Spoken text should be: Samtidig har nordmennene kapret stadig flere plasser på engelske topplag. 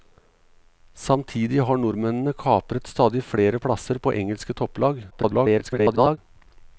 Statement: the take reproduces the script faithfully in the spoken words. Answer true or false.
false